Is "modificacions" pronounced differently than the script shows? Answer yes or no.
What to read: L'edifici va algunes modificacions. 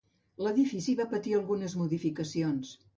no